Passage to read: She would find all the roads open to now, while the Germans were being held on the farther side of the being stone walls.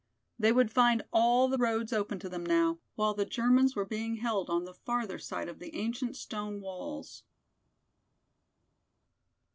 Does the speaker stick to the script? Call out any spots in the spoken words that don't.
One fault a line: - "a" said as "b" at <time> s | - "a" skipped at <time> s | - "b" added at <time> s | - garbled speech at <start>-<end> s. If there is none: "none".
- "She" said as "They" at 0.4 s
- "them" added at 2.3 s
- "being" said as "ancient" at 5.7 s